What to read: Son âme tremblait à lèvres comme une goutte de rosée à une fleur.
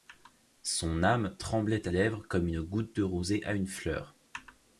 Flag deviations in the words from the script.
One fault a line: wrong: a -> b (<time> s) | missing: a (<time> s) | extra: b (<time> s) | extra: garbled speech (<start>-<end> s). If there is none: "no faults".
no faults